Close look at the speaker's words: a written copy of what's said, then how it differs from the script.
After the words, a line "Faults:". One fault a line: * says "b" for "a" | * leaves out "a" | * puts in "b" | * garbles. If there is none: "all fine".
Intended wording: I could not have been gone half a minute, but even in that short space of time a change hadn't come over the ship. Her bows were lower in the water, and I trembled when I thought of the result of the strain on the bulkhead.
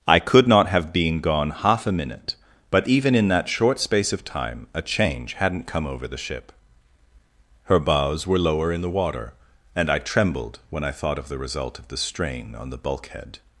I could not have been gone half a minute, but even in that short space of time a change hadn't come over the ship. Her bows were lower in the water, and I trembled when I thought of the result of the strain on the bulkhead.
Faults:
all fine